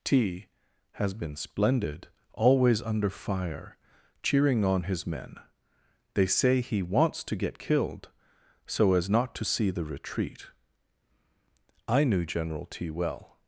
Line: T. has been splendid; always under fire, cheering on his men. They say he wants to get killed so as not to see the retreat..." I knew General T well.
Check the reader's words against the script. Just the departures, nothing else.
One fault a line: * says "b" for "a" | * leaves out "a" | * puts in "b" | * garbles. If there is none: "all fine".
all fine